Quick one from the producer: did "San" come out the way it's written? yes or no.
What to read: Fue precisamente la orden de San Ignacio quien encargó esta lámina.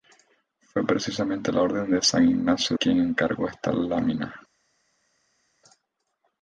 yes